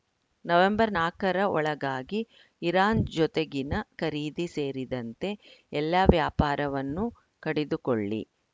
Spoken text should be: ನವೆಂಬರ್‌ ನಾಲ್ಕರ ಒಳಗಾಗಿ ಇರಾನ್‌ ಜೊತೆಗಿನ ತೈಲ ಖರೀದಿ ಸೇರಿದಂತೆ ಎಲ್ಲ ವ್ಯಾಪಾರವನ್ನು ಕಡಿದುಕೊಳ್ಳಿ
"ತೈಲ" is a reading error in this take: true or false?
true